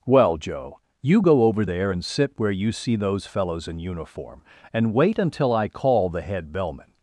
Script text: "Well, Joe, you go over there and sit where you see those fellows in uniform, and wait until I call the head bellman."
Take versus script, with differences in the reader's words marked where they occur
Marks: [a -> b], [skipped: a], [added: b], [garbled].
"Well, Joe, you go over there and sit where you see those fellows in uniform, and wait until I call the head bellman."